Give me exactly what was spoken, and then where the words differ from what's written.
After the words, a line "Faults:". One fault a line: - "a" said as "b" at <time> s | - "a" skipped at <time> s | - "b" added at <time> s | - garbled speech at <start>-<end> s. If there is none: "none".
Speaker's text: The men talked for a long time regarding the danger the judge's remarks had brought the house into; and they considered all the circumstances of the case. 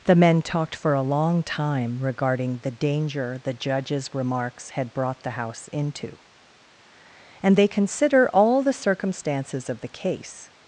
The men talked for a long time regarding the danger the judge's remarks had brought the house into; and they consider all the circumstances of the case.
Faults:
- "considered" said as "consider" at 7.7 s